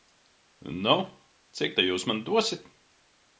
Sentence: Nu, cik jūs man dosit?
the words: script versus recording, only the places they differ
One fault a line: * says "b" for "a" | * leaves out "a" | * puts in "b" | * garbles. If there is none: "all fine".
* puts in "ta"